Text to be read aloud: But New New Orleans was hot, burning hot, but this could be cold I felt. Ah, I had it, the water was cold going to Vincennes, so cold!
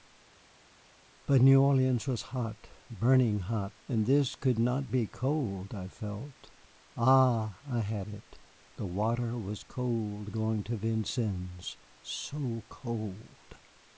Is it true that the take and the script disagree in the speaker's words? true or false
true